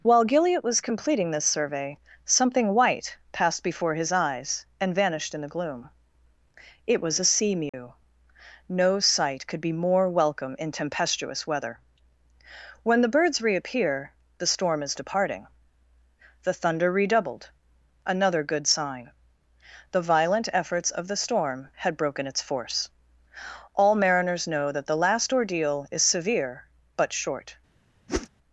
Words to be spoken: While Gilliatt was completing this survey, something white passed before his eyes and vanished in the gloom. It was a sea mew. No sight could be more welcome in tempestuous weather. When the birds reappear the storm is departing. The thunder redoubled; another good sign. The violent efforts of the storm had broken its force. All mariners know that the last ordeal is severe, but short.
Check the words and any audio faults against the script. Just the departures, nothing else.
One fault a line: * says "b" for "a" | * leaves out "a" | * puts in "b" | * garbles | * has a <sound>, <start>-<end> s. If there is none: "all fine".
* has a dropout, 7.7-7.7 s
* has a whoosh, 28.1-28.3 s